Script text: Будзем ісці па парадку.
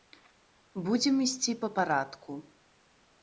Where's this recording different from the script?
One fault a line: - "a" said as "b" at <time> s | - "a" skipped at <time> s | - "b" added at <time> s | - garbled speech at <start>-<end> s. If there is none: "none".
none